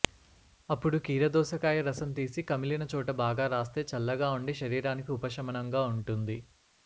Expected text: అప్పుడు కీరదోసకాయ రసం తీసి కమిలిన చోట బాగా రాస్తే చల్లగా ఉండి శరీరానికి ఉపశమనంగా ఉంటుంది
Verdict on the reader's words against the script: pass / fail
pass